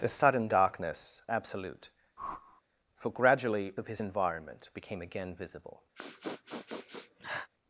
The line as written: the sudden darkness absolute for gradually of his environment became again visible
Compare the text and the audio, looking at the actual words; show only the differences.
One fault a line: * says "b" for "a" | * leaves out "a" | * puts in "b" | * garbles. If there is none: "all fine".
all fine